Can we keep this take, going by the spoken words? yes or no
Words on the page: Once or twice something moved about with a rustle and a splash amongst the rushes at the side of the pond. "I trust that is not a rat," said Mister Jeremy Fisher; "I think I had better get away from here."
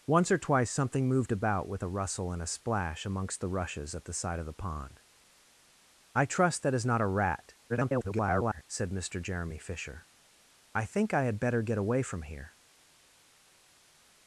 no